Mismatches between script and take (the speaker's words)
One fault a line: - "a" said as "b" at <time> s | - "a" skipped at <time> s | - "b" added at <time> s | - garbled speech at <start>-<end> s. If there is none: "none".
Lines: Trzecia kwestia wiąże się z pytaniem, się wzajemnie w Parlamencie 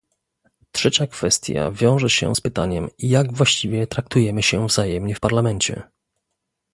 - "jak właściwie traktujemy" added at 3.0 s